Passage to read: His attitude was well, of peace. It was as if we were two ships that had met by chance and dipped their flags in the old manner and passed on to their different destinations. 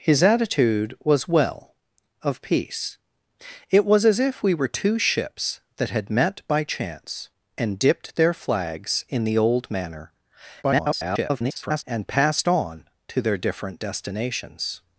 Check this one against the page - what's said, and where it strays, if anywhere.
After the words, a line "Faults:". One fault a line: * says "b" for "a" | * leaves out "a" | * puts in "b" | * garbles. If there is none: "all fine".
His attitude was well, of peace. It was as if we were two ships that had met by chance and dipped their flags in the old manner [garbled] and passed on to their different destinations.
Faults:
* garbles